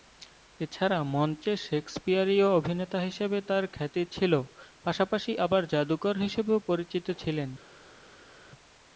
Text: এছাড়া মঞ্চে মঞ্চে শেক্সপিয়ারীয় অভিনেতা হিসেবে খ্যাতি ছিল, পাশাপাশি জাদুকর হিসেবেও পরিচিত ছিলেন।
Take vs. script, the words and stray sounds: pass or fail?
fail